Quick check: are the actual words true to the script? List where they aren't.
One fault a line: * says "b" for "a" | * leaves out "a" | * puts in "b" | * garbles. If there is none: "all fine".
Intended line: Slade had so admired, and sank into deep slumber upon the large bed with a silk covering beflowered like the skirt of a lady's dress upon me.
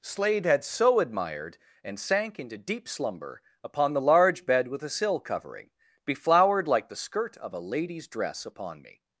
* says "sill" for "silk"